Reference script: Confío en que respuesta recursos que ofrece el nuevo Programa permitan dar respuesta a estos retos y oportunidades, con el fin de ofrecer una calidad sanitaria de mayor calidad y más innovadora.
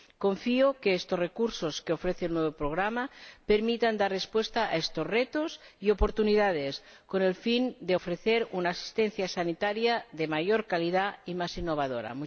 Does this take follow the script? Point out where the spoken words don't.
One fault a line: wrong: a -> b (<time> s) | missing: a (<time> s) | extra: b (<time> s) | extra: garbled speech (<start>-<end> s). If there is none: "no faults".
wrong: respuesta -> estos (0.9 s)
wrong: calidad -> asistencia (8.7 s)